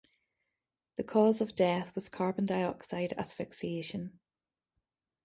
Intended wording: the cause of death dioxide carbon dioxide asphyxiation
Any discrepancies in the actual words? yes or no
yes